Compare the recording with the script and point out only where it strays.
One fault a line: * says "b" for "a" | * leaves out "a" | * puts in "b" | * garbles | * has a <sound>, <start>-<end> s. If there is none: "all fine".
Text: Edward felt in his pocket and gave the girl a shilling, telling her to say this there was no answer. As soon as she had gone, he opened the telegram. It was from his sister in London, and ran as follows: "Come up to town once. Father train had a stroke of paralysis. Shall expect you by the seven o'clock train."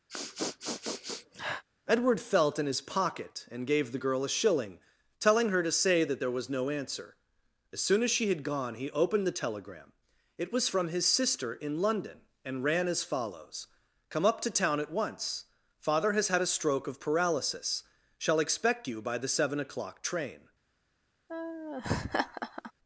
* has a sniff, 0.1-1.6 s
* says "that" for "this"
* puts in "at"
* says "has" for "train"
* has a laugh, 21.3-22.7 s